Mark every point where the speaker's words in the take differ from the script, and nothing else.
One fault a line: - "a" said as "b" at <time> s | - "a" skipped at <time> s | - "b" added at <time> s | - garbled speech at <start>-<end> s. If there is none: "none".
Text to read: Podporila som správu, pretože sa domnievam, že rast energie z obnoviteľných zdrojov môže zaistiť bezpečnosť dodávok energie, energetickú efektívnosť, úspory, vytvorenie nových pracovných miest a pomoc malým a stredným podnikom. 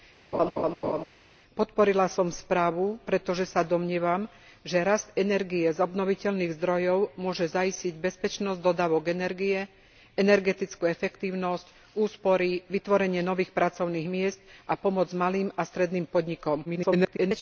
- garbled speech at 16.6-17.4 s